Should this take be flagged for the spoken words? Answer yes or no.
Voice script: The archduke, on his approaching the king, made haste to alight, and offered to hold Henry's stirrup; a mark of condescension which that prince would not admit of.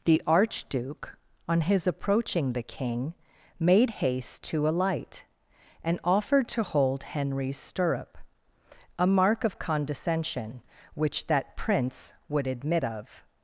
yes